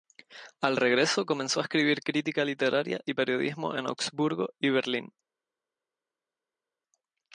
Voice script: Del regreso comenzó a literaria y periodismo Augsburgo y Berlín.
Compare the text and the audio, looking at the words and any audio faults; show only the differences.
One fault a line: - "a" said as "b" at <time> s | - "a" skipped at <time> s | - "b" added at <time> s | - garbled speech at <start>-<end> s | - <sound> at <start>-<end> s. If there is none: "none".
- "Del" said as "Al" at 0.6 s
- "escribir crítica" added at 1.6 s
- "en" added at 3.8 s